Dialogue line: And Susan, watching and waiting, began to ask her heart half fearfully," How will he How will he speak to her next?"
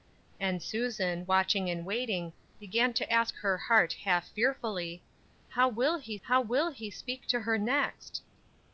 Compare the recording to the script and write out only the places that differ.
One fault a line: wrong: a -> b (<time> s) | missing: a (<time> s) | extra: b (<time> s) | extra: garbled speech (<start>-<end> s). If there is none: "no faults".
no faults